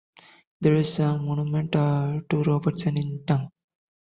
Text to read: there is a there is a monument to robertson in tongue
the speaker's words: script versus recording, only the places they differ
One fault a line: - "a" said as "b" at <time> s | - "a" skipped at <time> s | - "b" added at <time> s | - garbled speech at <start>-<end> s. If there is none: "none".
- "there is a" skipped at 1.2 s